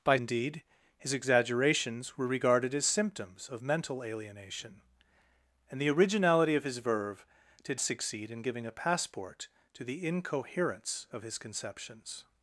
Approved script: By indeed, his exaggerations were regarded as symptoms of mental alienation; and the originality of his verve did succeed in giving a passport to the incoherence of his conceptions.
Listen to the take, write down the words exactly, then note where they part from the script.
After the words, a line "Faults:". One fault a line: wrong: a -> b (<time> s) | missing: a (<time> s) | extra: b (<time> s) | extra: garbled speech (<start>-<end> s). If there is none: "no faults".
By indeed, his exaggerations were regarded as symptoms of mental alienation; and the originality of his verve did succeed in giving a passport to the incoherence of his conceptions.
Faults:
no faults